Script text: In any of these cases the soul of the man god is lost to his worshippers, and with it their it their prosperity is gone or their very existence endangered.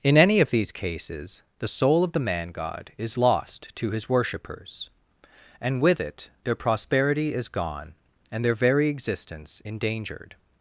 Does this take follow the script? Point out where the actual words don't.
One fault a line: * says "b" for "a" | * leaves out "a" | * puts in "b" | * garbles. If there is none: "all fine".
* leaves out "it their"
* says "and" for "or"